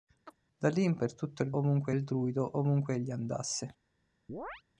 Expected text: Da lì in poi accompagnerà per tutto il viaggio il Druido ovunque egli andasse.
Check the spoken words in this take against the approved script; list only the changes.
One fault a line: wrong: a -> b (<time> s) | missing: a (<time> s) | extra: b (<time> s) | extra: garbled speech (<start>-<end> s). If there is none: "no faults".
missing: poi accompagnerà (1.0 s)
wrong: viaggio -> ovunque (1.6 s)